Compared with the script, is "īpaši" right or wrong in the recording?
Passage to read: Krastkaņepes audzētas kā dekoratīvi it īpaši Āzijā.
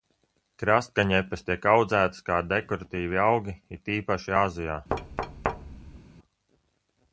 right